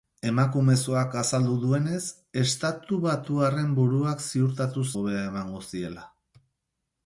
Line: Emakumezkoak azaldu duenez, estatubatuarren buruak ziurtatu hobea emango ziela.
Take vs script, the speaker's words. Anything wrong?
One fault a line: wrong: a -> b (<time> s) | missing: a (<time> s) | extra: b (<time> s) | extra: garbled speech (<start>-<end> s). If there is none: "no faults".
no faults